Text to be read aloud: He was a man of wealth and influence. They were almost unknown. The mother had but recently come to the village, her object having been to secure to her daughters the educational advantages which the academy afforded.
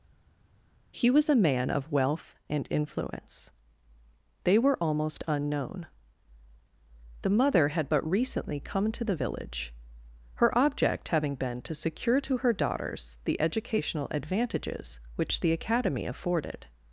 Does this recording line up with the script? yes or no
yes